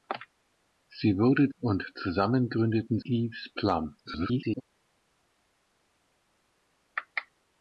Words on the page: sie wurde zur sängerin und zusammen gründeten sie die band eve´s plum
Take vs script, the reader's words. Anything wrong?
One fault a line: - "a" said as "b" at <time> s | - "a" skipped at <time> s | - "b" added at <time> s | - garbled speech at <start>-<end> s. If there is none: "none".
- "zur sängerin" skipped at 1.5 s
- "sie die band" skipped at 3.0 s
- garbled speech at 4.0-4.6 s